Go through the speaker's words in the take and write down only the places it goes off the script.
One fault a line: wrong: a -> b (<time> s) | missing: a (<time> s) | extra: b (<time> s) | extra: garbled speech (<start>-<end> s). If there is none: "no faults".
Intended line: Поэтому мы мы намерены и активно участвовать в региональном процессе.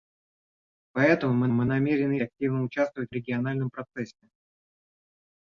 no faults